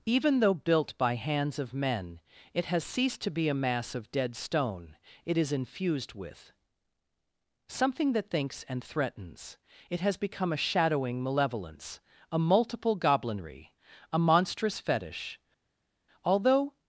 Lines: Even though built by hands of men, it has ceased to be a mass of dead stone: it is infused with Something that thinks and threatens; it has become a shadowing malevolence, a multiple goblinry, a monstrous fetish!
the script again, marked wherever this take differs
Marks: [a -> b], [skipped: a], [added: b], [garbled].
Even though built by hands of men, it has ceased to be a mass of dead stone: it is infused with Something that thinks and threatens; it has become a shadowing malevolence, a multiple goblinry, a monstrous fetish! [added: although]